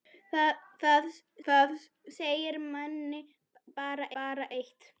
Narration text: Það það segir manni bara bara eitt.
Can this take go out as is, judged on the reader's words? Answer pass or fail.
pass